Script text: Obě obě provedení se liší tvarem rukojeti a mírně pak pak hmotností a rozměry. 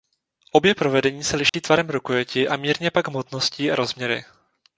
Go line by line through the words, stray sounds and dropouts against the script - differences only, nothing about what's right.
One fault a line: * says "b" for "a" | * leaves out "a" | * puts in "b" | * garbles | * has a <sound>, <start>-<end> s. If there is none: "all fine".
* leaves out "obě"
* has a dropout, 1.5-1.5 s
* leaves out "pak"